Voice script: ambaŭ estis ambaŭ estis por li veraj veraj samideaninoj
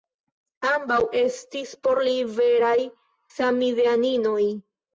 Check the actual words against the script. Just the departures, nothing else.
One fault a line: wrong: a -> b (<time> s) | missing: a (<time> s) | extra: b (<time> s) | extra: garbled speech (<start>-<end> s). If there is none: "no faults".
missing: ambaŭ estis (1.8 s)
missing: veraj (2.7 s)